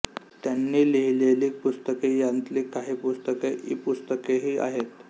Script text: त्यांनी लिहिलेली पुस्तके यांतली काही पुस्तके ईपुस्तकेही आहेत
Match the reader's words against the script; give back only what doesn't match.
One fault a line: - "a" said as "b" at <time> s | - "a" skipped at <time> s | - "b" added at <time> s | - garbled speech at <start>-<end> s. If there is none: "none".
none